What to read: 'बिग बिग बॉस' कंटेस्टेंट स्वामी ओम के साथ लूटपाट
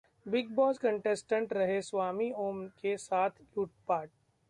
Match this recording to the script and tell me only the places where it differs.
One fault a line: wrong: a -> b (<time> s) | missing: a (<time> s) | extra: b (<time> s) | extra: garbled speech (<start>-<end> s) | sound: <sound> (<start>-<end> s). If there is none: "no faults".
missing: बिग (0.5 s)
extra: रहे (1.5 s)